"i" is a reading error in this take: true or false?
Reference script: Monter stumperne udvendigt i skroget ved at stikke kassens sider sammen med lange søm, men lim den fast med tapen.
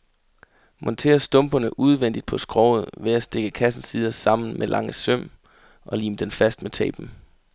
true